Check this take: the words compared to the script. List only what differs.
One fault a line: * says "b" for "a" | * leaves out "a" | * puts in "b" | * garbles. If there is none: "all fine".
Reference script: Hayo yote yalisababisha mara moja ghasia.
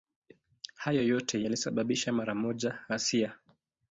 all fine